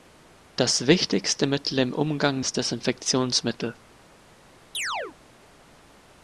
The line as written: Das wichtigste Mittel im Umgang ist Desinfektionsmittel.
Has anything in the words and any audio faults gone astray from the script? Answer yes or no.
yes